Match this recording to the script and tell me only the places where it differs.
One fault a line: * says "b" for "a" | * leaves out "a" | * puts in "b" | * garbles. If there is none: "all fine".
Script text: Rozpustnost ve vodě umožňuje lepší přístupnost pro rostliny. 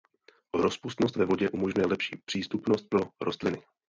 all fine